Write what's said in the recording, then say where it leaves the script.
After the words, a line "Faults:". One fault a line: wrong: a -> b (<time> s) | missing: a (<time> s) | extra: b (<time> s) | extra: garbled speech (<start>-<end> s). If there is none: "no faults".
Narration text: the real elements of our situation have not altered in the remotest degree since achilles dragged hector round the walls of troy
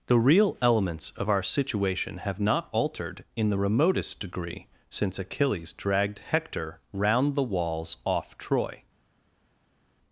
the real elements of our situation have not altered in the remotest degree since achilles dragged hector round the walls off troy
Faults:
wrong: of -> off (8.0 s)